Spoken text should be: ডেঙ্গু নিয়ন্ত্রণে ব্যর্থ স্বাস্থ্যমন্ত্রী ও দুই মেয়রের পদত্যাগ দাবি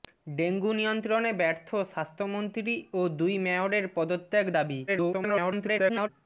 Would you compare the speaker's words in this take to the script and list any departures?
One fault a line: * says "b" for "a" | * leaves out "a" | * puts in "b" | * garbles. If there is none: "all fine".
* garbles